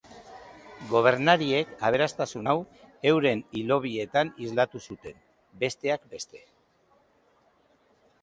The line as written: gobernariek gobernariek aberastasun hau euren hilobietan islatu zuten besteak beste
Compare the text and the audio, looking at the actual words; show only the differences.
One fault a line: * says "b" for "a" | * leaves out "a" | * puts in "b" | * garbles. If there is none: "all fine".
* leaves out "gobernariek"